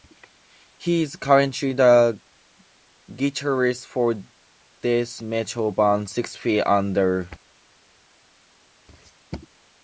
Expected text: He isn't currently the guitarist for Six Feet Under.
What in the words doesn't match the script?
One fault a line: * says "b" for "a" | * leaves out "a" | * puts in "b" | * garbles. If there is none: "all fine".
* says "is" for "isn't"
* puts in "death metal band"